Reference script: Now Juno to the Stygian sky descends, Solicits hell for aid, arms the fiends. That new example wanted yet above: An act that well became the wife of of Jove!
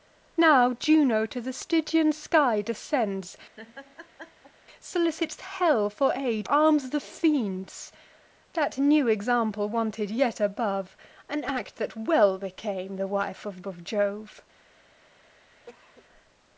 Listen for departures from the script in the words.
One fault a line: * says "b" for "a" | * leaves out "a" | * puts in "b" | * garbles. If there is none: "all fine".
all fine